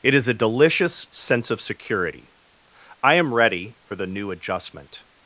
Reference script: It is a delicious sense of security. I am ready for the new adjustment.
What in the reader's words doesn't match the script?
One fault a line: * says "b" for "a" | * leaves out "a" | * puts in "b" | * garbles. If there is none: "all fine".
all fine